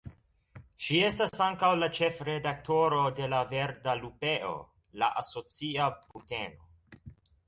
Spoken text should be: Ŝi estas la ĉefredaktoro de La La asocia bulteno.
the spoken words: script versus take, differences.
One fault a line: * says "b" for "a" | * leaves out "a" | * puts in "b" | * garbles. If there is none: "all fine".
* puts in "ankaŭ"
* puts in "Verda Lupeo"